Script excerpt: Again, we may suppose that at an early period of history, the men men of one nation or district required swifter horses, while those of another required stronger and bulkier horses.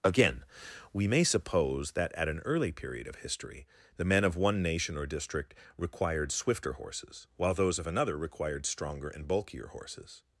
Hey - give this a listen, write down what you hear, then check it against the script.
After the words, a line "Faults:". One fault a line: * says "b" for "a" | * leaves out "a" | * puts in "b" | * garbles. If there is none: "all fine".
Again, we may suppose that at an early period of history, the men of one nation or district required swifter horses, while those of another required stronger and bulkier horses.
Faults:
* leaves out "men"